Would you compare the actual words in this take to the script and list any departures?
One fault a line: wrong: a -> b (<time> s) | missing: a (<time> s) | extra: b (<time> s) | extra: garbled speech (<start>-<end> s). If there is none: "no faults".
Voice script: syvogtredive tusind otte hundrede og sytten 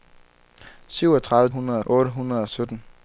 wrong: tusind -> hundrede (1.5 s)